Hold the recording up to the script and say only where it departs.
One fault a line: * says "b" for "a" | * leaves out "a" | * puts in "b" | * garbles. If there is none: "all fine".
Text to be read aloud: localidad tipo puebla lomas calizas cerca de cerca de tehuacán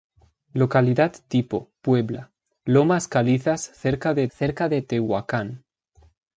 all fine